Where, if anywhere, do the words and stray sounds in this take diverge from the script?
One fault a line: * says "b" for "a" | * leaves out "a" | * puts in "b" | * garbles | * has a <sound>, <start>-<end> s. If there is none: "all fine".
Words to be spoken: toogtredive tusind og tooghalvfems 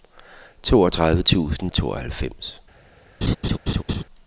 * has a laugh, 3.2-4.0 s